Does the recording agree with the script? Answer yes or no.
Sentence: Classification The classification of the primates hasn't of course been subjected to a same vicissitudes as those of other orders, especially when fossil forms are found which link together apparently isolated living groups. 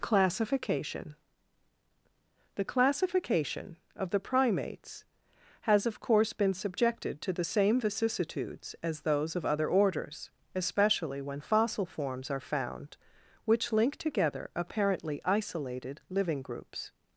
no